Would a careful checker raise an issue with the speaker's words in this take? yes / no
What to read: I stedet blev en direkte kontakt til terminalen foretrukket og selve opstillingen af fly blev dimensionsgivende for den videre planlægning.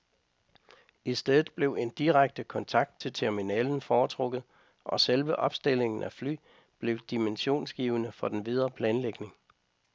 no